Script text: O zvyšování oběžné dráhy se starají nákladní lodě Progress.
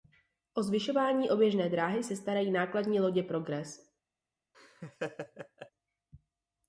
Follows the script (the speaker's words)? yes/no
yes